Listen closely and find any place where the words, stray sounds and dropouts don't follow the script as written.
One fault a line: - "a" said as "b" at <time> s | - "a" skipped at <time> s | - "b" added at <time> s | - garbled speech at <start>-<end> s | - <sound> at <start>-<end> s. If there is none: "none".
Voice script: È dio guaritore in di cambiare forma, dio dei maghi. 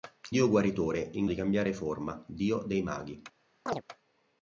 - chirp at 3.7-3.8 s